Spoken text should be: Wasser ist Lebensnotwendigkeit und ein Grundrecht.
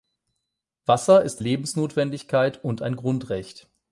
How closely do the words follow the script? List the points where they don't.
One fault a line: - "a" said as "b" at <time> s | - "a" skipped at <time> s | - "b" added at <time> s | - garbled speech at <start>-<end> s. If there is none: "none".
none